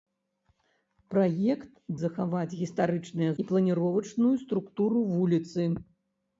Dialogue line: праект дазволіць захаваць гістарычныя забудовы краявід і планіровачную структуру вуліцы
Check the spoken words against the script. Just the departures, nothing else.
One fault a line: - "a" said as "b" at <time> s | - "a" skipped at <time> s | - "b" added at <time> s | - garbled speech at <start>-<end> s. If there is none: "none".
- "дазволіць" skipped at 1.7 s
- "забудовы краявід" skipped at 3.3 s